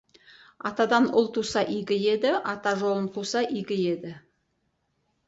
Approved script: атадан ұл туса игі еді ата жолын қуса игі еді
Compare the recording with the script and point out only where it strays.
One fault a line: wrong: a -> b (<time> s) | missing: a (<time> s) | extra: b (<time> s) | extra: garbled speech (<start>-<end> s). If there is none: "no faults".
no faults